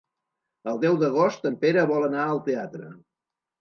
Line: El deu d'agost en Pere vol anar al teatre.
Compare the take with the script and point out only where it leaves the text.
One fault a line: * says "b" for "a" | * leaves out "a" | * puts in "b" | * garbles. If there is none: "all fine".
all fine